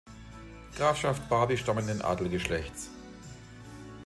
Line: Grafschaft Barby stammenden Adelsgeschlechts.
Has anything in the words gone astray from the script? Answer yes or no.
no